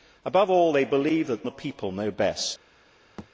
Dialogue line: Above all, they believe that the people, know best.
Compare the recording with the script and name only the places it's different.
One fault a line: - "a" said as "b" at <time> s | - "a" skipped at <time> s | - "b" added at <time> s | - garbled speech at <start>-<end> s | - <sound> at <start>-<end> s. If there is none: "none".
- thud at 3.2-3.3 s